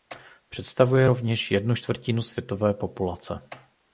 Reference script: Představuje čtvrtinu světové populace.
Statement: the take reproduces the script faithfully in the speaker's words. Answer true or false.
false